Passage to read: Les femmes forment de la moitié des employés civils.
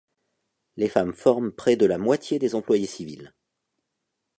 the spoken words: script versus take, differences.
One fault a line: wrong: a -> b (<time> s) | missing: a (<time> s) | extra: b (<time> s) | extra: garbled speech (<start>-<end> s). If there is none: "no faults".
extra: près (1.5 s)